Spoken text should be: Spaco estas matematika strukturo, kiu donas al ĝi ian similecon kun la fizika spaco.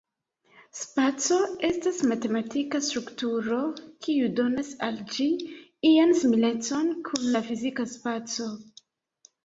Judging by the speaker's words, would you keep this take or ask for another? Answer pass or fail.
pass